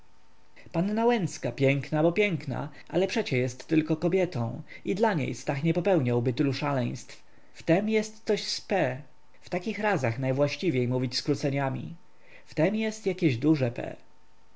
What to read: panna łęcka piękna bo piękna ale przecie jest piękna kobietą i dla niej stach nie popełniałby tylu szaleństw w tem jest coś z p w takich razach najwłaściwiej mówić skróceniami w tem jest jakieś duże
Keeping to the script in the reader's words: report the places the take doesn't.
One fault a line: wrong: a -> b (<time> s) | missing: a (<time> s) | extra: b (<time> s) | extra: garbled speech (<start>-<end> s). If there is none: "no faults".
wrong: piękna -> tylko (3.7 s)